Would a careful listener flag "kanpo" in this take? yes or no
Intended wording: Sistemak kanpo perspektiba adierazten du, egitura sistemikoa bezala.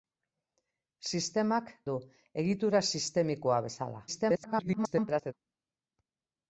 yes